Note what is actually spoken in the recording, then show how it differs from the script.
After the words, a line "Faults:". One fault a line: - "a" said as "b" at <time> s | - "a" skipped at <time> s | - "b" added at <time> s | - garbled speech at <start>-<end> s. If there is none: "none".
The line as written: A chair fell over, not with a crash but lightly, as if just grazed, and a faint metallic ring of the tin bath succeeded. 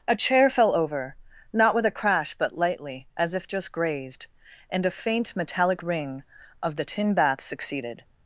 A chair fell over, not with a crash but lightly, as if just grazed, and a faint metallic ring of the tin bath succeeded.
Faults:
none